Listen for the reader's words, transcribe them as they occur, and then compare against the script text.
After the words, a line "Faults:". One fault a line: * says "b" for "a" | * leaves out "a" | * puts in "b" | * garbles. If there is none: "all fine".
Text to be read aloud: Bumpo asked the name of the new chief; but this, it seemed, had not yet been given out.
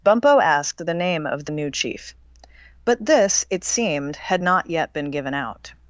Bumpo asked the name of the new chief; but this, it seemed, had not yet been given out.
Faults:
all fine